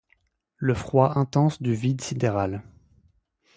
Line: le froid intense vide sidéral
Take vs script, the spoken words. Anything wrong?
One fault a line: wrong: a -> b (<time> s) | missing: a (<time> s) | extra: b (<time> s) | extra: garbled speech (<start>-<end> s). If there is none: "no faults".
extra: du (1.6 s)